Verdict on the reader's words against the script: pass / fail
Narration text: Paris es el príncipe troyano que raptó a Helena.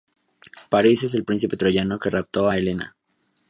pass